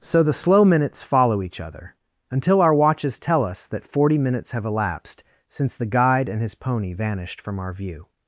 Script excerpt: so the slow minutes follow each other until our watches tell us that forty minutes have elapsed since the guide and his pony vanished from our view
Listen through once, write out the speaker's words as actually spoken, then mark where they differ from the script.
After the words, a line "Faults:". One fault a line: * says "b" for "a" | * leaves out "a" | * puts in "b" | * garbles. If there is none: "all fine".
so the slow minutes follow each other until our watches tell us that forty minutes have elapsed since the guide and his pony vanished from our view
Faults:
all fine